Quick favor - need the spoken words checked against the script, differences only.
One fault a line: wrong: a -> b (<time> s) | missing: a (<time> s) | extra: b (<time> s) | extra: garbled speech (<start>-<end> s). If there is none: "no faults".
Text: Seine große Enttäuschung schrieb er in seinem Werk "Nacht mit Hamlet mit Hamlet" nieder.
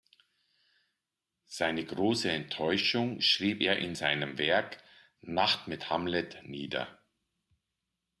missing: mit Hamlet (6.4 s)